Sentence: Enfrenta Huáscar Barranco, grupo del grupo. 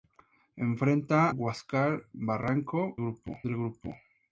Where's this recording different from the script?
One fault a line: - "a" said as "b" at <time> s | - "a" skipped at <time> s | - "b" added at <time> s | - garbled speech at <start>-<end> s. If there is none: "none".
none